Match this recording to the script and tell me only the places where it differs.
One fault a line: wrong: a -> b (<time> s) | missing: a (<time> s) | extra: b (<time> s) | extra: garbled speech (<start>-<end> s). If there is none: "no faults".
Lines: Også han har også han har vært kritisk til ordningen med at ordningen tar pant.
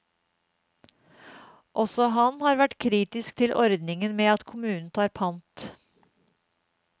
missing: også han har (2.6 s)
wrong: ordningen -> kommunen (4.5 s)